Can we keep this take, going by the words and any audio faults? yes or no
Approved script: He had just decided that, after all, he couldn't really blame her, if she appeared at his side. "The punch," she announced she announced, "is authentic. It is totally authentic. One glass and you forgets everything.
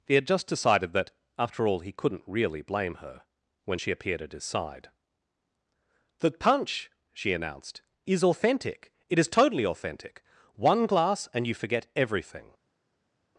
no